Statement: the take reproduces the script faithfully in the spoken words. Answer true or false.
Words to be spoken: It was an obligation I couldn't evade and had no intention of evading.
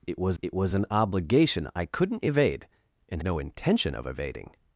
false